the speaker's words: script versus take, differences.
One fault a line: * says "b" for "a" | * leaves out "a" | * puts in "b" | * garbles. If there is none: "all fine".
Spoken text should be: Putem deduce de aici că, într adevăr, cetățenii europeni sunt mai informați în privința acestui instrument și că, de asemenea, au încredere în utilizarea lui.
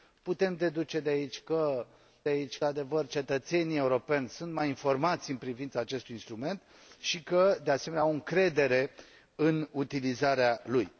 * says "aici" for "într"